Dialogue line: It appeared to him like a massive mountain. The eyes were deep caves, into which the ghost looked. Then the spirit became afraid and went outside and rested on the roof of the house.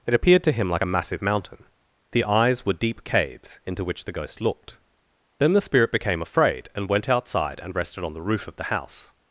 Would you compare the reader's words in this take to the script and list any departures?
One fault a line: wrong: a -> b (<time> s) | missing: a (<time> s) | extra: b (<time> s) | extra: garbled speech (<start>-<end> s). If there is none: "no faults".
no faults